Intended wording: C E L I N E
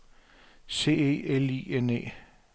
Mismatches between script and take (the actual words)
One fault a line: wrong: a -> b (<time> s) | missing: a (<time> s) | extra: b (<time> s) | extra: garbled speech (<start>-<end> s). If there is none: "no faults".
no faults